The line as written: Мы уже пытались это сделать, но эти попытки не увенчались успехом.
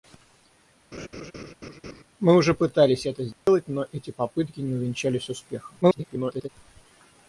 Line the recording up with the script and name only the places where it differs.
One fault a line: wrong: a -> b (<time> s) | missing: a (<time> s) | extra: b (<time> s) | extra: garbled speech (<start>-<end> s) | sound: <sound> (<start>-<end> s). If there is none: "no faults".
sound: laugh (0.9-2.0 s)
sound: dropout (3.3-3.5 s)
extra: garbled speech (5.8-6.5 s)